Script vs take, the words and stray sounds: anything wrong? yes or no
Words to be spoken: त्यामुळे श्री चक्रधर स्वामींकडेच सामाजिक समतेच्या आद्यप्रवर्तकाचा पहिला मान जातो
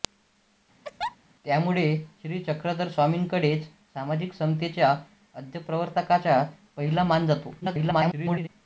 yes